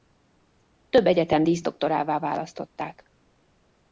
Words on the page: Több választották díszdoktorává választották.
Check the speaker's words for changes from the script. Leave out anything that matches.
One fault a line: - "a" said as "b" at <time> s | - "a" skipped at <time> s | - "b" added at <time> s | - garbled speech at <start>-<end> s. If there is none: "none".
- "választották" said as "egyetem" at 1.1 s